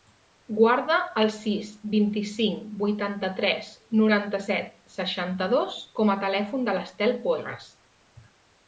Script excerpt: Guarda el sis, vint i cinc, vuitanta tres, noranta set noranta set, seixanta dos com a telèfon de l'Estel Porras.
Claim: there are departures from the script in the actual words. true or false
true